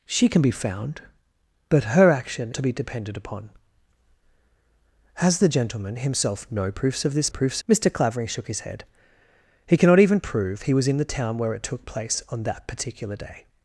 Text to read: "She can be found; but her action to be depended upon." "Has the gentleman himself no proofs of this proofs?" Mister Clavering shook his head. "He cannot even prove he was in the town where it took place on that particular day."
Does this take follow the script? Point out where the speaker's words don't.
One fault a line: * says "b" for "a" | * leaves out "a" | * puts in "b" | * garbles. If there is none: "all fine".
all fine